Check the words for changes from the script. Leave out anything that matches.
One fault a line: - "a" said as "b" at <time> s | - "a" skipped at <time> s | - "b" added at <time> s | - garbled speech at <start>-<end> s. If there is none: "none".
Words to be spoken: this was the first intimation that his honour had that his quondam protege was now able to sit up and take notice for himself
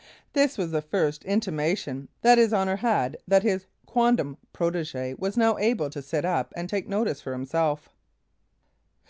none